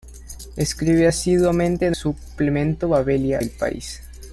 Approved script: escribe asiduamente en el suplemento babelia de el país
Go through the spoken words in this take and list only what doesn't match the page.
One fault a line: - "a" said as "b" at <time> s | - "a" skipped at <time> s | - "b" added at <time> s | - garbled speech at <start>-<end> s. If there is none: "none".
- "el" skipped at 1.9 s
- "de" skipped at 3.4 s